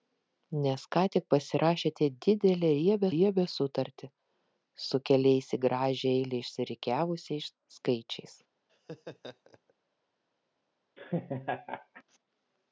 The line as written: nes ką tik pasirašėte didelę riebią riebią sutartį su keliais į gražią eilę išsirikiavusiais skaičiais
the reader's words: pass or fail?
pass